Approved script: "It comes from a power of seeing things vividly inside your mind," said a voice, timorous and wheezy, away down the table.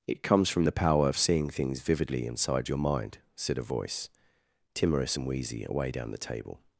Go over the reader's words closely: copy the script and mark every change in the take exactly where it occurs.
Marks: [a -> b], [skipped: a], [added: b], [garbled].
"It comes from [a -> the] power of seeing things vividly inside your mind," said a voice, timorous and wheezy, away down the table.